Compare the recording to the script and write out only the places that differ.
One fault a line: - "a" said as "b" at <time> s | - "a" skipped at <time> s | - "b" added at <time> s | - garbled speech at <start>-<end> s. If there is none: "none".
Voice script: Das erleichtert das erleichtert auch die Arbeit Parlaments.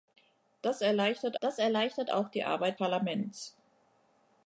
none